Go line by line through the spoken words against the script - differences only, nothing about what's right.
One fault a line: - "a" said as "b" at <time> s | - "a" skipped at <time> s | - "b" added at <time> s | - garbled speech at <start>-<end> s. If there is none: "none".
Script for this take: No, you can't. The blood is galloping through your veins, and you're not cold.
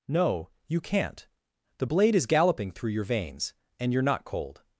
- "blood" said as "blade" at 1.8 s